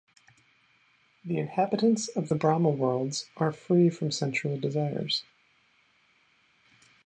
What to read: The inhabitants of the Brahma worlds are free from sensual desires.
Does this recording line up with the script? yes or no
yes